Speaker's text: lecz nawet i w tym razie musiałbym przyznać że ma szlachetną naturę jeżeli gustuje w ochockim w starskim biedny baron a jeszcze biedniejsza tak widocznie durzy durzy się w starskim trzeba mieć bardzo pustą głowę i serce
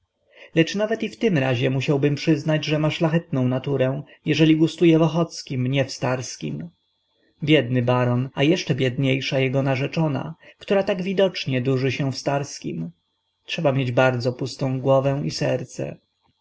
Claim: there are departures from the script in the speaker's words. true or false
true